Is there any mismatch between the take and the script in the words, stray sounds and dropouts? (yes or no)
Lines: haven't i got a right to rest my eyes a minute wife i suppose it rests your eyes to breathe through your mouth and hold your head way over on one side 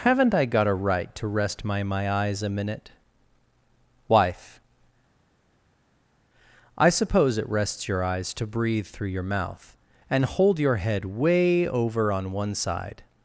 yes